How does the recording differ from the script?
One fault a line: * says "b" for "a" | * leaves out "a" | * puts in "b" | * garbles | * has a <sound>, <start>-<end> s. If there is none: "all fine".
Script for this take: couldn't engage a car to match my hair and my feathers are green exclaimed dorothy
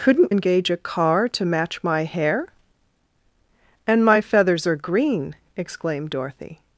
all fine